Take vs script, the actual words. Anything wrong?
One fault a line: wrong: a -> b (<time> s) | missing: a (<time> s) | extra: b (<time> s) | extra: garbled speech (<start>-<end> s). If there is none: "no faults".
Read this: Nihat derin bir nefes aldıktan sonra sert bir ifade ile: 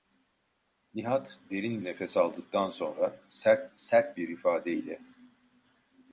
missing: bir (1.8 s)
extra: sert (3.8 s)